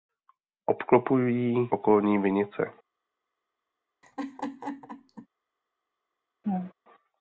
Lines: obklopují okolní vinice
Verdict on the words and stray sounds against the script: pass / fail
fail